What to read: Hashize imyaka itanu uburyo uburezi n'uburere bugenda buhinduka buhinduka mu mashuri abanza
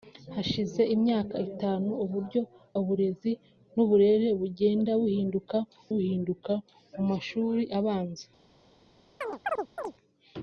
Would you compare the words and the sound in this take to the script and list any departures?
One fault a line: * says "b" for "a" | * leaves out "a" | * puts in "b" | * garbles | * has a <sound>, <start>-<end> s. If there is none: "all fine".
* has a chirp, 9.2-9.9 s